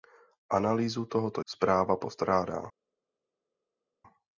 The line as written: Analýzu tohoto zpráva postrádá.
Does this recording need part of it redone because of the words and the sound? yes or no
no